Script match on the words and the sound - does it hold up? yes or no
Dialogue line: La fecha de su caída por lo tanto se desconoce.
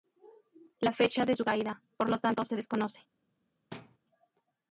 no